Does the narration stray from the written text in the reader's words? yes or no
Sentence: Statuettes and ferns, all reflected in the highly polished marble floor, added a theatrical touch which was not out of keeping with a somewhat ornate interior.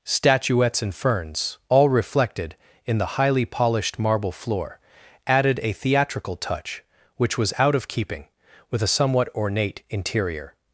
yes